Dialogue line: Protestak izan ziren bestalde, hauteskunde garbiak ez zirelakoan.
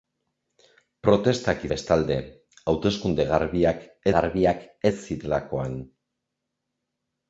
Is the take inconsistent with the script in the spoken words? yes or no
yes